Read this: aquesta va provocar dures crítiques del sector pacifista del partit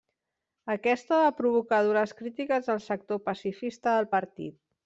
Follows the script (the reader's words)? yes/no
yes